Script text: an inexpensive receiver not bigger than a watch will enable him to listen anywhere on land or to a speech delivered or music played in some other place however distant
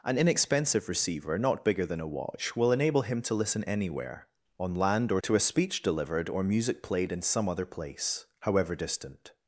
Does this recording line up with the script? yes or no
yes